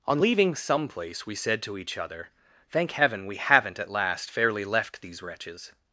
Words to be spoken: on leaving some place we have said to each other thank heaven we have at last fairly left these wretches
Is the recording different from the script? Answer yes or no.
yes